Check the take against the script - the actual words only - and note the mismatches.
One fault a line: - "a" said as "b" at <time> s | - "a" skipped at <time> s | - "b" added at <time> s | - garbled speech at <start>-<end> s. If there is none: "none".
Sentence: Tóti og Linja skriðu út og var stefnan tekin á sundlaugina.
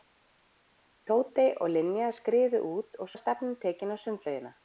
none